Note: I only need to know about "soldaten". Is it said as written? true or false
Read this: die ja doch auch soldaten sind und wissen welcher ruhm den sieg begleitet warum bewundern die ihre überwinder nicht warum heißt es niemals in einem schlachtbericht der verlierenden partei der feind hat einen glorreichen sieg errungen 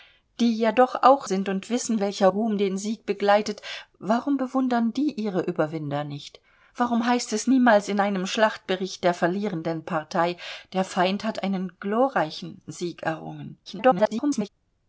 false